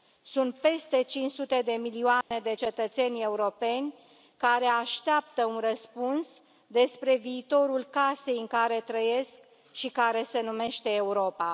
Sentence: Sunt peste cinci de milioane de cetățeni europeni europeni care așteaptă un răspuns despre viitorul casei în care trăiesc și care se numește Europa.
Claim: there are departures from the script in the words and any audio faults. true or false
true